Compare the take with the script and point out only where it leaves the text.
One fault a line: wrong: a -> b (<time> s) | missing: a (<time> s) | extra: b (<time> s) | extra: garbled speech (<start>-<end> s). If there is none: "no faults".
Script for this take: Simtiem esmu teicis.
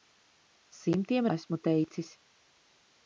no faults